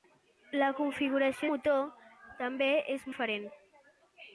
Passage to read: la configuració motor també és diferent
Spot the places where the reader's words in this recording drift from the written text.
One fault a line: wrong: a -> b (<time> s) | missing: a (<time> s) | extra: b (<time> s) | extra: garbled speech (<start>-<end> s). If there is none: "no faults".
no faults